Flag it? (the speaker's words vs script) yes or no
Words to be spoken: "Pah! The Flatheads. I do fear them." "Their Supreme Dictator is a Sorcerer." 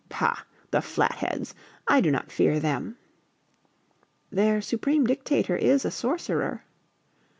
yes